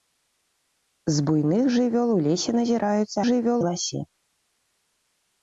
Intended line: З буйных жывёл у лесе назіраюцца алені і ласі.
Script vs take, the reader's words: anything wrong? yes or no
yes